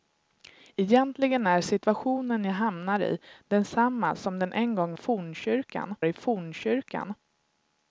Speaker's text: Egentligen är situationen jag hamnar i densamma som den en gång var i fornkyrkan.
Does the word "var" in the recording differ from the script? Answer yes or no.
yes